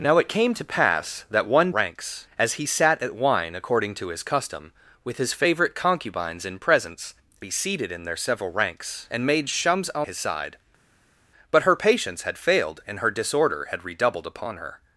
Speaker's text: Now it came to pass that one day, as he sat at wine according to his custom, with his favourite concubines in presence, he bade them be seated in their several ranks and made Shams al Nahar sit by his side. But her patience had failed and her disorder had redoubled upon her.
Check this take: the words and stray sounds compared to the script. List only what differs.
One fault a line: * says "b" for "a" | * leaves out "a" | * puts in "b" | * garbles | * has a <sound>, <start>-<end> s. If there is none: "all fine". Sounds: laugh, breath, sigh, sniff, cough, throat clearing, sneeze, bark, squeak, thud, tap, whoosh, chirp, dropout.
* says "ranks" for "day"
* leaves out "he bade them"
* leaves out "Nahar sit by"